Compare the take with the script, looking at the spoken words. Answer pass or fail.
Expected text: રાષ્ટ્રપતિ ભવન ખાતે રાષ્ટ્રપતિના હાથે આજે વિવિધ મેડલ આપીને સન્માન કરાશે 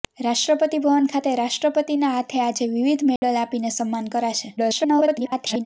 fail